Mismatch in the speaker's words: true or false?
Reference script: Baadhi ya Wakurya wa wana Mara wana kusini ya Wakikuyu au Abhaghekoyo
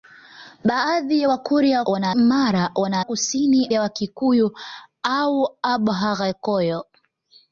false